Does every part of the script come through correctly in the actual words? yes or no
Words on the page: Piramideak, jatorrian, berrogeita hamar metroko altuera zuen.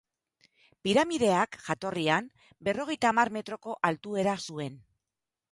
yes